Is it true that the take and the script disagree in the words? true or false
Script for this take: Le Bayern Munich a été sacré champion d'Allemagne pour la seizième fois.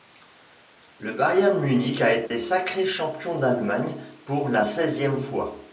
false